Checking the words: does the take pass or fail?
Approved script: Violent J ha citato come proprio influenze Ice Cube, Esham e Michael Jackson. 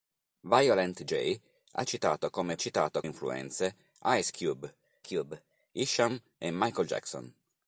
fail